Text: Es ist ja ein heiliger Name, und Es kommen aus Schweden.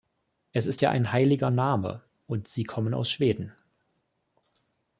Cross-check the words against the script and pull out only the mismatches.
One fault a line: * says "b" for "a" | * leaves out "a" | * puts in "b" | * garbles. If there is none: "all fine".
* says "Sie" for "Es"